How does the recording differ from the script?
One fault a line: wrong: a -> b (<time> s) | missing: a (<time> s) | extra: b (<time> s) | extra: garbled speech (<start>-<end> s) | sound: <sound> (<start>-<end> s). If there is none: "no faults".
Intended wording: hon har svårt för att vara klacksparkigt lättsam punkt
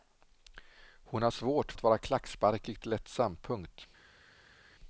missing: för (1.7 s)